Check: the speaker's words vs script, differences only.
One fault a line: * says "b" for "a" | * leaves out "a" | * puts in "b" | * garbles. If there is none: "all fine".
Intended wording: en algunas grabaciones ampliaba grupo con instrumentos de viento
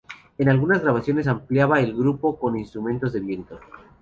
* puts in "el"